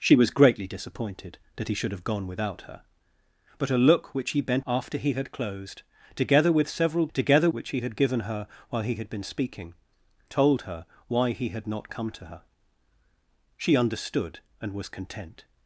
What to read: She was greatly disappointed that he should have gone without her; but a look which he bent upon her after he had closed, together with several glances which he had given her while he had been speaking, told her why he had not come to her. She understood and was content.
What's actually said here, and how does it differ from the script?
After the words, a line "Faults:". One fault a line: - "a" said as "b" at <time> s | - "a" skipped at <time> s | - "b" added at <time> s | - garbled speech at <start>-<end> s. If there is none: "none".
She was greatly disappointed that he should have gone without her; but a look which he bent after he had closed, together with several together which he had given her while he had been speaking, told her why he had not come to her. She understood and was content.
Faults:
- "upon her" skipped at 4.7 s
- "glances" said as "together" at 7.1 s